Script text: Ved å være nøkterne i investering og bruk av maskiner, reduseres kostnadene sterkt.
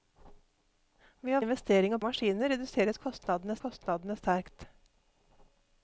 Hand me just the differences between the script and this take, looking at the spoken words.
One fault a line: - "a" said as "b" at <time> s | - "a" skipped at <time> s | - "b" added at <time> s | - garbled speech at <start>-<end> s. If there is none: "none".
- "være nøkterne" skipped at 1.4 s
- "bruk" skipped at 2.0 s
- "kostnadene" added at 3.7 s